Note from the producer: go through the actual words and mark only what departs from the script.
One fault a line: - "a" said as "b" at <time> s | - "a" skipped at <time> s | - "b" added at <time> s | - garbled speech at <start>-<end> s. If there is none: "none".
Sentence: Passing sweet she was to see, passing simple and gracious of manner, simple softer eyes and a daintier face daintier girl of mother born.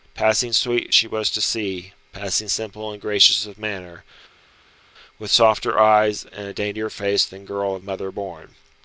- "simple" said as "with" at 5.2 s
- "daintier" said as "than" at 7.2 s